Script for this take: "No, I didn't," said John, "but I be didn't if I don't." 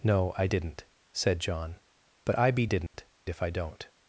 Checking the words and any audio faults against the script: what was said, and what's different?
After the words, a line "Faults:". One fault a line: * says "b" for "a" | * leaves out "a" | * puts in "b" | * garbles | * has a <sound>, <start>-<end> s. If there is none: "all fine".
"No, I didn't," said John, "but I be didn't if I don't."
Faults:
* has a dropout, 2.9-2.9 s